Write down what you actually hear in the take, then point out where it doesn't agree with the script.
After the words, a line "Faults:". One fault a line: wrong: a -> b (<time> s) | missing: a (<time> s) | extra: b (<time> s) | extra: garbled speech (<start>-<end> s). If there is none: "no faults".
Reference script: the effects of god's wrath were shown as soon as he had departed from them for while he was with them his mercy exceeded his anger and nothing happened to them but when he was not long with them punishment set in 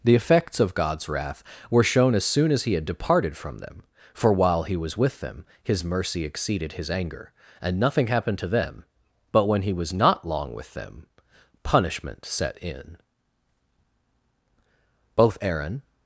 the effects of god's wrath were shown as soon as he had departed from them for while he was with them his mercy exceeded his anger and nothing happened to them but when he was not long with them punishment set in both aaron
Faults:
extra: both aaron (15.2 s)